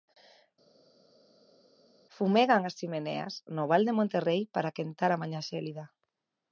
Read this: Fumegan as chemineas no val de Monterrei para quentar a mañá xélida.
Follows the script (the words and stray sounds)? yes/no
yes